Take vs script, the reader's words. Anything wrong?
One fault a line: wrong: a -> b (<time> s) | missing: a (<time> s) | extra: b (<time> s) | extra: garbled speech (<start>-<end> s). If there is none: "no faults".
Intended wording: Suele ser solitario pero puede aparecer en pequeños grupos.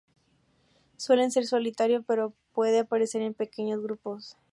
no faults